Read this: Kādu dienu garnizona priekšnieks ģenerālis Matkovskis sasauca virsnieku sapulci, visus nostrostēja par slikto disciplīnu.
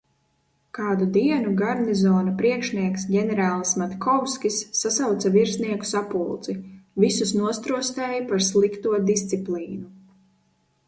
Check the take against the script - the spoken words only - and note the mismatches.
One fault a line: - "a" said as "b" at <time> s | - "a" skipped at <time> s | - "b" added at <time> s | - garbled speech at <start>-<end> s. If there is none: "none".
none